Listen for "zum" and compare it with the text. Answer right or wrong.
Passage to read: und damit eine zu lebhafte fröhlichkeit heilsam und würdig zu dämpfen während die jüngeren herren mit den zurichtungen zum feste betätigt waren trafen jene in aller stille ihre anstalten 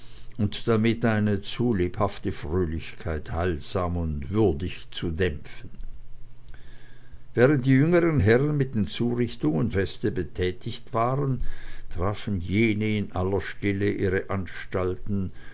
wrong